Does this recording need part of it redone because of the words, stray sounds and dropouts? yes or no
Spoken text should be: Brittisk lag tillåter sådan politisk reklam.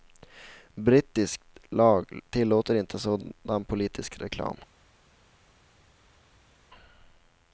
yes